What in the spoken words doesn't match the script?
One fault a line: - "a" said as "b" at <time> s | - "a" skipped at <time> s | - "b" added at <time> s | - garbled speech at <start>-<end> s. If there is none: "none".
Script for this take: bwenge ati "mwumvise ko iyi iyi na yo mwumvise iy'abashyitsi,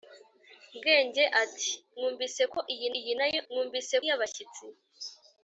none